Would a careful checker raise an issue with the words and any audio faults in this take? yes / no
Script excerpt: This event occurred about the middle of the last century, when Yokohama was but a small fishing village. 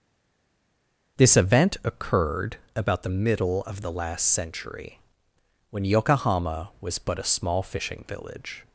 no